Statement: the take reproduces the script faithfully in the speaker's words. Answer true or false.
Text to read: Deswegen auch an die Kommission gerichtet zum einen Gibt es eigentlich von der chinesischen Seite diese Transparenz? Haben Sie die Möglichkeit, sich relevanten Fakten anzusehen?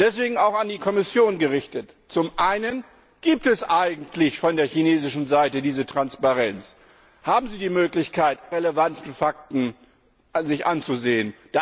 true